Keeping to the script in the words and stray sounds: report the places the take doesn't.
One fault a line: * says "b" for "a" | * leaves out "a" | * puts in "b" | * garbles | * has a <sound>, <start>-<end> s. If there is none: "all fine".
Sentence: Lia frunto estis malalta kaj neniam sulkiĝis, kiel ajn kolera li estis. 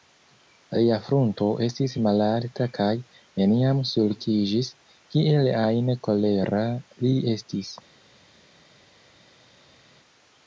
all fine